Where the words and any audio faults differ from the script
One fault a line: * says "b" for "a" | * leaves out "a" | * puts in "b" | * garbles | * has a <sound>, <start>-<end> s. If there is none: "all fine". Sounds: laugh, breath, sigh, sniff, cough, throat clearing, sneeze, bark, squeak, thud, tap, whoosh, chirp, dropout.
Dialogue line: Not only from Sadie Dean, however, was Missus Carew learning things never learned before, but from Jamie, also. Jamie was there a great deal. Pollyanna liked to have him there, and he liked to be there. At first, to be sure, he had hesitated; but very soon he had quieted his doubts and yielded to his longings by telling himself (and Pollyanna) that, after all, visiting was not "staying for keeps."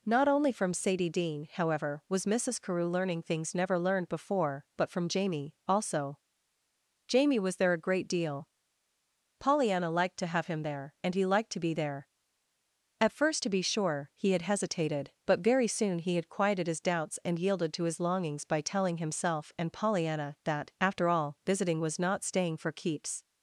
all fine